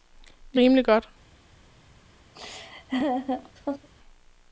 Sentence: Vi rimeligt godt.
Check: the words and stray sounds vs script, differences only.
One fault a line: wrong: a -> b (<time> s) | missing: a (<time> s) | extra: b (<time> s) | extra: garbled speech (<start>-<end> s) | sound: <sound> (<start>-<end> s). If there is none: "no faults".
sound: laugh (2.3-3.9 s)